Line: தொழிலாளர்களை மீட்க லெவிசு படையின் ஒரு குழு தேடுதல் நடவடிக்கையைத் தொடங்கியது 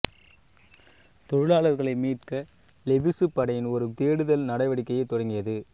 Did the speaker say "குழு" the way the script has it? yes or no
no